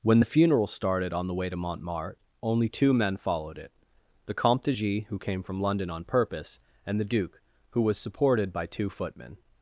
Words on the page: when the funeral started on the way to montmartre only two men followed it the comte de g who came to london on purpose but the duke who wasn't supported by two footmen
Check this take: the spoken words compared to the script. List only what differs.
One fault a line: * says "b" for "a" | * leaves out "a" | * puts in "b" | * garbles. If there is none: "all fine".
* says "from" for "to"
* says "and" for "but"
* says "was" for "wasn't"